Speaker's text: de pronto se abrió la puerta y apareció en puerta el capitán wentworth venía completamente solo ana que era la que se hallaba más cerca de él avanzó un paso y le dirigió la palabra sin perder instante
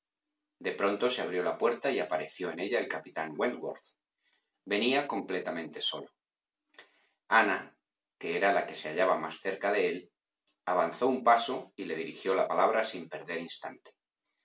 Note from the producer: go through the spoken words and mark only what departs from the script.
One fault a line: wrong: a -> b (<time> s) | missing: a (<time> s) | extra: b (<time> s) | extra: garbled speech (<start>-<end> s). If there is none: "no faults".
wrong: puerta -> ella (2.6 s)